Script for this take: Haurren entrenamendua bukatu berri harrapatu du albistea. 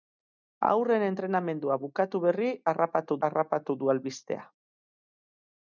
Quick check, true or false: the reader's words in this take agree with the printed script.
false